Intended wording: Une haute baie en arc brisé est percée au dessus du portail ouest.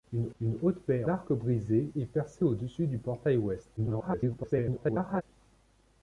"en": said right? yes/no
no